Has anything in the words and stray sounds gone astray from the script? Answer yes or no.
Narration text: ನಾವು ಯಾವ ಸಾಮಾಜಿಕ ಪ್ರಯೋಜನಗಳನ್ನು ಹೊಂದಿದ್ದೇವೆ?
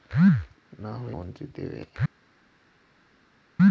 yes